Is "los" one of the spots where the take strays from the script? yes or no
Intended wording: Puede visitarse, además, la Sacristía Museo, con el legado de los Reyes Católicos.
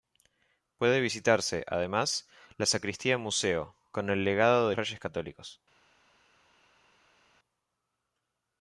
yes